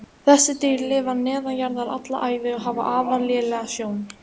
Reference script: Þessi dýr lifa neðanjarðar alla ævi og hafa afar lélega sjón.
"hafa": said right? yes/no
yes